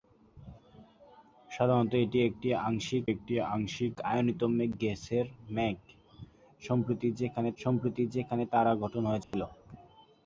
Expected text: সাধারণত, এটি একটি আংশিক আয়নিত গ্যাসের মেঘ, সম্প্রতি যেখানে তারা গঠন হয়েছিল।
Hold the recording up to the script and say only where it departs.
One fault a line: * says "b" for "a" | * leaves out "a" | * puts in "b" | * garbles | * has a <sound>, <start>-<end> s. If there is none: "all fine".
* puts in "একটি আংশিক"
* puts in "সম্প্রতি যেখানে"
* has a dropout, 9.2-9.3 s